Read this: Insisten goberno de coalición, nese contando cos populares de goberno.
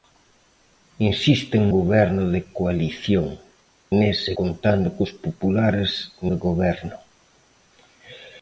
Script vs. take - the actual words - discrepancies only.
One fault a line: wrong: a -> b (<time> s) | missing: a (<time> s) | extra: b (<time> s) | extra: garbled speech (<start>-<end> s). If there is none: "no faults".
no faults